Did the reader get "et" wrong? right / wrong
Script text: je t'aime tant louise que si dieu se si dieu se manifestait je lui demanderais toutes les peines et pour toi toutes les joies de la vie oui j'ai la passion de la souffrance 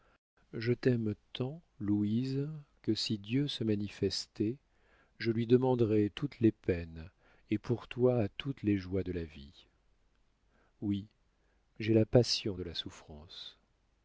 right